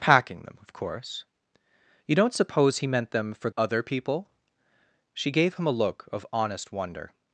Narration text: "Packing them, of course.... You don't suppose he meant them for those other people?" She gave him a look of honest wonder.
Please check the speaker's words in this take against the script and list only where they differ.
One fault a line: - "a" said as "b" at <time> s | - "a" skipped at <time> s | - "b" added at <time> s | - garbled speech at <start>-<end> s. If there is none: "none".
- "those" skipped at 3.5 s